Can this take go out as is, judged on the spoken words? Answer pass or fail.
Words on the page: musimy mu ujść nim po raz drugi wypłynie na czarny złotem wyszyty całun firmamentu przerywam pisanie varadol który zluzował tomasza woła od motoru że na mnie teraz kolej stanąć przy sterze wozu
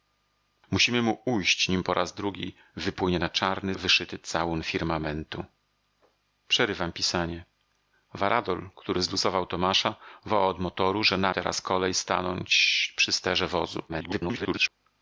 fail